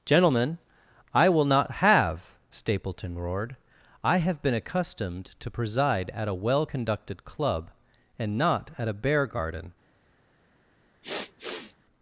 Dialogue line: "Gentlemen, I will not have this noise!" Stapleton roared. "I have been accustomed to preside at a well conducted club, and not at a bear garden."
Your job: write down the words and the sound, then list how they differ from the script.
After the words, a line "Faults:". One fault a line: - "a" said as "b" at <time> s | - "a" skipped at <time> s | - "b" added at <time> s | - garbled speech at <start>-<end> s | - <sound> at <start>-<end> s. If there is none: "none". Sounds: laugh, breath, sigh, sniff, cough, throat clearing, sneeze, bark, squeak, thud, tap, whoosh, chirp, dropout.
"Gentlemen, I will not have!" Stapleton roared. "I have been accustomed to preside at a well conducted club, and not at a bear garden."
Faults:
- "this noise" skipped at 2.3 s
- sniff at 11.0-11.8 s